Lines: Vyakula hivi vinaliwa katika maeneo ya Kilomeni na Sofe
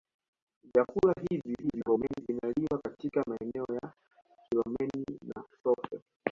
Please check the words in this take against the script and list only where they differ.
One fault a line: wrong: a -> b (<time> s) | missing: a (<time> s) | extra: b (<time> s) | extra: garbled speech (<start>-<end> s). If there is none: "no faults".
extra: garbled speech (1.6-2.2 s)